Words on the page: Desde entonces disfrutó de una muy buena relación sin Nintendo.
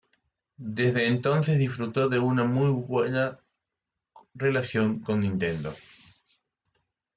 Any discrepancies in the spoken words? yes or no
yes